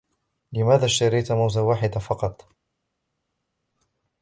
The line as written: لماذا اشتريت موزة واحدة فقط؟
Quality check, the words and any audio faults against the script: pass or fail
pass